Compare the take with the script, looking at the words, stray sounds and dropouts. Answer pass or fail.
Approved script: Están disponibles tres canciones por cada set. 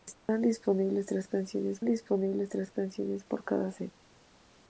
fail